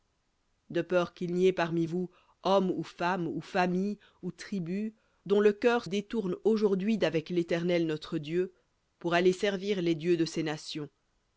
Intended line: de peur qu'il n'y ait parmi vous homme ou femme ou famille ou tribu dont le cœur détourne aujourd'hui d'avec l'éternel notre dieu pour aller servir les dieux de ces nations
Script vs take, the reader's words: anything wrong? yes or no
no